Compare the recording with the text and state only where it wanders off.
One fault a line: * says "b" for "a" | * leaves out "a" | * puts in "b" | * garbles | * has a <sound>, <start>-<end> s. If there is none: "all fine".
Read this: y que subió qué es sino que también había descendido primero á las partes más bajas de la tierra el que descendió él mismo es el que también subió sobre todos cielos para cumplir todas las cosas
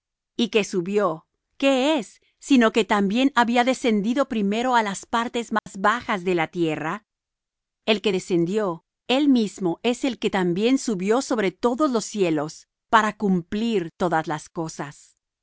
* has a dropout, 5.6-5.7 s
* puts in "los"